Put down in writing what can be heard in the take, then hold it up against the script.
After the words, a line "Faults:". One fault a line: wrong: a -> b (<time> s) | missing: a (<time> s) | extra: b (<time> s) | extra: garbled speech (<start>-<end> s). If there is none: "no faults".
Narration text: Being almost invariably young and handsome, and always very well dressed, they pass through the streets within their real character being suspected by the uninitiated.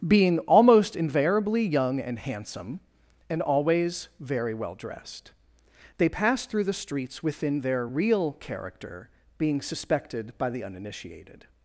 Being almost invariably young and handsome, and always very well dressed, they pass through the streets within their real character being suspected by the uninitiated.
Faults:
no faults